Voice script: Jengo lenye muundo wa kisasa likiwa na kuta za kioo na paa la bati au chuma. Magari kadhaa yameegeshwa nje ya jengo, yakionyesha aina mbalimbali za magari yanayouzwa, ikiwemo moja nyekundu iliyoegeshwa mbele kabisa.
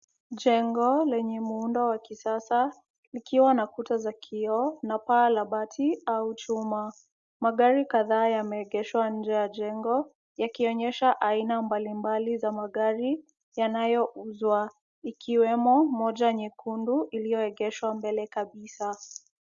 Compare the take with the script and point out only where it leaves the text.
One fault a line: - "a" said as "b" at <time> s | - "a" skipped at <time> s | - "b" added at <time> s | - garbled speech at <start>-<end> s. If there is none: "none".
none